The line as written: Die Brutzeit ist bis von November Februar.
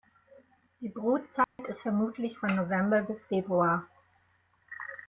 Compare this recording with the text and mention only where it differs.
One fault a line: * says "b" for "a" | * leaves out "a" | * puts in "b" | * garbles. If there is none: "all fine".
* says "vermutlich" for "bis"
* puts in "bis"